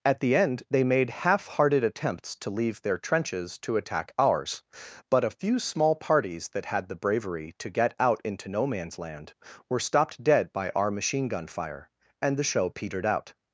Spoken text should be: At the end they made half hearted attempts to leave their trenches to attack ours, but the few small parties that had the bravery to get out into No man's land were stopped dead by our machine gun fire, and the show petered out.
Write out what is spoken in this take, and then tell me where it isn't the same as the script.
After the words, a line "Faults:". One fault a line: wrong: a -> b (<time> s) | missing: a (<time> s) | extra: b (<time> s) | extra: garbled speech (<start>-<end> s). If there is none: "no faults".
At the end they made half hearted attempts to leave their trenches to attack ours, but a few small parties that had the bravery to get out into No man's land were stopped dead by our machine gun fire, and the show petered out.
Faults:
wrong: the -> a (5.3 s)